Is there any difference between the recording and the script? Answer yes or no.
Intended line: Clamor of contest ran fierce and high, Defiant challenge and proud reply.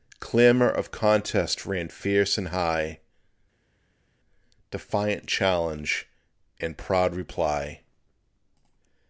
no